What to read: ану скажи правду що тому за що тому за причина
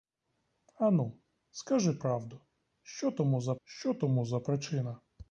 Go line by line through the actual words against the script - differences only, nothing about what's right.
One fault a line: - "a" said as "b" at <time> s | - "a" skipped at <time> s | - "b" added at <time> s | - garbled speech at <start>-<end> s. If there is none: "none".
none